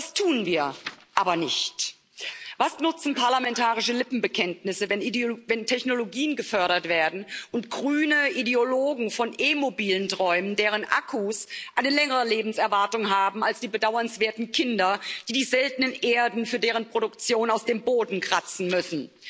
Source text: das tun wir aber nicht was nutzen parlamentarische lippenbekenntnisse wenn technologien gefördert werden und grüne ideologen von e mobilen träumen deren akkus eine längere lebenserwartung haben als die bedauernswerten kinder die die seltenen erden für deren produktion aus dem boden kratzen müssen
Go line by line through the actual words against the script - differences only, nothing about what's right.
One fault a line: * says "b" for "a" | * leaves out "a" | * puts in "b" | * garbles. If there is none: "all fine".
all fine